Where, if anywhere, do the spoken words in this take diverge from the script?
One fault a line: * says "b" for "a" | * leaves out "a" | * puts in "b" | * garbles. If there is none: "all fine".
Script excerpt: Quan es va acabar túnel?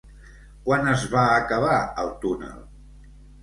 * puts in "el"